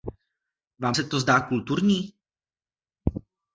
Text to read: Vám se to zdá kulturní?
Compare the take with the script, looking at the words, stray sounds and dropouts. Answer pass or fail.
pass